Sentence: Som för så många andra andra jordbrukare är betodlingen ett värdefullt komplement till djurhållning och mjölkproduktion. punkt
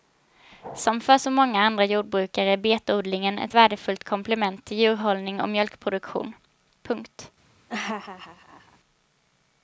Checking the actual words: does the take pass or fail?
fail